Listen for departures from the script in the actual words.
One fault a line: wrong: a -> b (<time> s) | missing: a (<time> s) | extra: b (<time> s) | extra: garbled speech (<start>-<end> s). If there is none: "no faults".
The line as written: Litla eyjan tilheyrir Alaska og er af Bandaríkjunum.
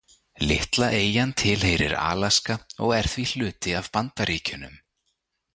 extra: því hluti (3.1 s)